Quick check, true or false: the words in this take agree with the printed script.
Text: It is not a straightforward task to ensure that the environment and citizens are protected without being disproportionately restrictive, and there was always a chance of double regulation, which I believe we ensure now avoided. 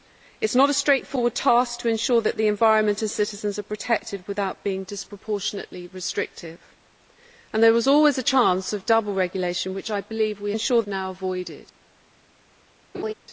true